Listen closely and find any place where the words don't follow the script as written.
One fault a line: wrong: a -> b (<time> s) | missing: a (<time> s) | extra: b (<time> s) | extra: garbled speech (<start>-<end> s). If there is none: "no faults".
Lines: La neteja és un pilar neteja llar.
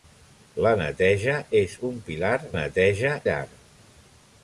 no faults